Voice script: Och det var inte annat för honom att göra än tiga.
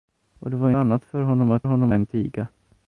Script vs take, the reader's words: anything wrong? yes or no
yes